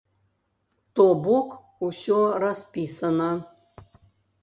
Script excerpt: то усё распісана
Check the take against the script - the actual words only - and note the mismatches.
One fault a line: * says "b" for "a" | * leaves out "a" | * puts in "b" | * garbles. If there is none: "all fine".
* puts in "бок"